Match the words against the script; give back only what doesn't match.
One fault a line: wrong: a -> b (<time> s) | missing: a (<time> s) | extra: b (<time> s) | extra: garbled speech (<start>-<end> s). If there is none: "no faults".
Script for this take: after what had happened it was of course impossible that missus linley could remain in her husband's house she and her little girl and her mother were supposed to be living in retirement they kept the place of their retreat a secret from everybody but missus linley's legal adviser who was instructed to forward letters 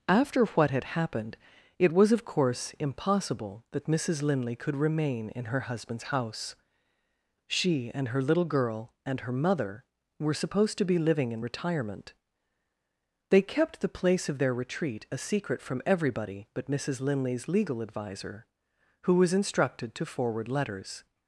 no faults